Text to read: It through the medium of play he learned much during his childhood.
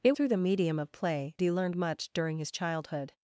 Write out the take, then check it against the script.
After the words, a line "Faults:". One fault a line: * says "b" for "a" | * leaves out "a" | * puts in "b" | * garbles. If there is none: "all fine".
It through the medium of play he learned much during his childhood.
Faults:
all fine